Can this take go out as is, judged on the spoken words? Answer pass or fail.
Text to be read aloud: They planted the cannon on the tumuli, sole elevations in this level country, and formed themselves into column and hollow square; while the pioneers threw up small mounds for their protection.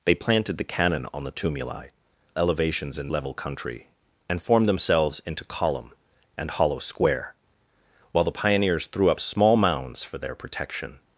fail